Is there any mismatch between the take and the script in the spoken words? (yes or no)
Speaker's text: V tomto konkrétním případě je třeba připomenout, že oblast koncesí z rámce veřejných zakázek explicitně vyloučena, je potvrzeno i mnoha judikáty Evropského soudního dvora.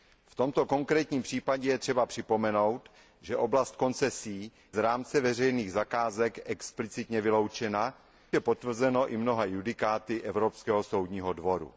no